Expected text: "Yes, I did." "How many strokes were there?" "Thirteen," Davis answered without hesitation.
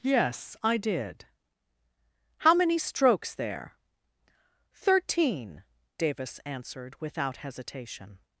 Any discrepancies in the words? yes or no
yes